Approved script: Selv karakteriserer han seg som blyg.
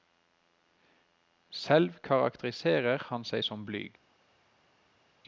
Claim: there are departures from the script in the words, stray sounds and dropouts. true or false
false